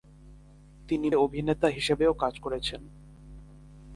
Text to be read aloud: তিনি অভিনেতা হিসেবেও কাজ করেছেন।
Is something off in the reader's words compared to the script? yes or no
no